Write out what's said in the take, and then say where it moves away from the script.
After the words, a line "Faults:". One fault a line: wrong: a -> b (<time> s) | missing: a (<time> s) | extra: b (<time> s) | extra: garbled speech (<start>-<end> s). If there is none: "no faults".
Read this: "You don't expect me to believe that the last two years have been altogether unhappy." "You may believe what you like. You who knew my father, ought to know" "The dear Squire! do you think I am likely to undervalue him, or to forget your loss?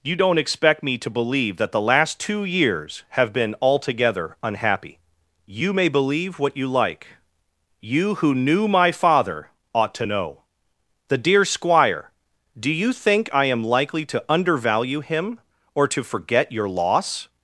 "You don't expect me to believe that the last two years have been altogether unhappy." "You may believe what you like. You who knew my father, ought to know" "The dear Squire! do you think I am likely to undervalue him, or to forget your loss?
Faults:
no faults